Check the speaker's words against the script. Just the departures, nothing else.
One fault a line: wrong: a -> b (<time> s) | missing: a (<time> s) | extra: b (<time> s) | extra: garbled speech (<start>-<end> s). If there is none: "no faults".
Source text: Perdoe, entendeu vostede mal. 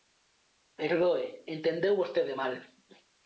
no faults